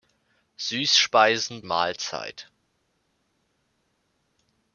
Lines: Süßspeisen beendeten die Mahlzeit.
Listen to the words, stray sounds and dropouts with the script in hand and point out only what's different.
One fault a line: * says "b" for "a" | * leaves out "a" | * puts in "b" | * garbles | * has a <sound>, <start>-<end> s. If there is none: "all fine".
* leaves out "beendeten die"